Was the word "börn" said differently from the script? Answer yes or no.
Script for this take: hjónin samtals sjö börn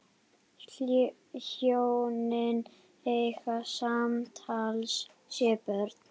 no